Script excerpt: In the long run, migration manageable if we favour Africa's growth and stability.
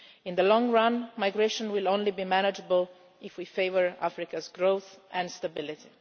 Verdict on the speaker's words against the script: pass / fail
fail